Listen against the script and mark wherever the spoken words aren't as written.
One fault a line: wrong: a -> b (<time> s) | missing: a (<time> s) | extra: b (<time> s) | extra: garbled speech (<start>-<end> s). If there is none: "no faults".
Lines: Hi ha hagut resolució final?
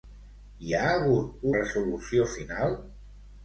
no faults